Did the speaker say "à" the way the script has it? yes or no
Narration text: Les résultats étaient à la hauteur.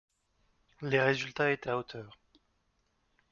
no